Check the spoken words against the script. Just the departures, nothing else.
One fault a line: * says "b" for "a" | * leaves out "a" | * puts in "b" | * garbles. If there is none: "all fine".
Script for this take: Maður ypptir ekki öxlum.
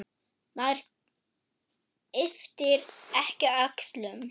all fine